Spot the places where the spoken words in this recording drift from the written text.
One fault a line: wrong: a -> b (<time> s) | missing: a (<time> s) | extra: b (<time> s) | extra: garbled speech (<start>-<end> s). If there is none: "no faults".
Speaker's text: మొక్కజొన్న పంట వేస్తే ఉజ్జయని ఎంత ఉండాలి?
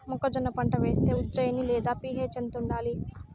extra: లేదా పి.హెచ్ (1.6 s)